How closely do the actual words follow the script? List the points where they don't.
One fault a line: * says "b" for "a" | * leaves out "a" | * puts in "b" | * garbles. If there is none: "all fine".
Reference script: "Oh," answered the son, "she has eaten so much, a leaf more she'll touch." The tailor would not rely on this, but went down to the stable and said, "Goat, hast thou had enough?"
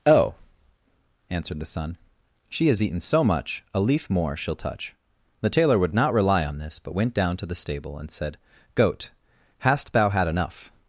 all fine